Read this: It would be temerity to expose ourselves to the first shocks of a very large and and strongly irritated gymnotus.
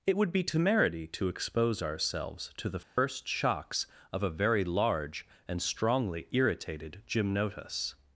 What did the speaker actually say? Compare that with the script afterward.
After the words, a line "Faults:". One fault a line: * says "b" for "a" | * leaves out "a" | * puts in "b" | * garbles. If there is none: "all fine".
It would be temerity to expose ourselves to the first shocks of a very large and strongly irritated gymnotus.
Faults:
* leaves out "and"